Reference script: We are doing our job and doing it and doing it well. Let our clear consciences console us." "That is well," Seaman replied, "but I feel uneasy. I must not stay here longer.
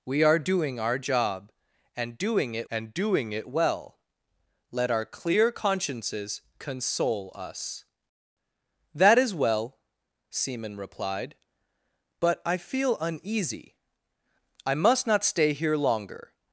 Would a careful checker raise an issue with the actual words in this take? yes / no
no